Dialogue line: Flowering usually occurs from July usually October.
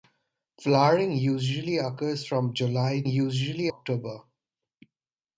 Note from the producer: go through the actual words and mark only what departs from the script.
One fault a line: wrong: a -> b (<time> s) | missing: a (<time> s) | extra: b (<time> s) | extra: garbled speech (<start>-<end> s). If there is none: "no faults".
no faults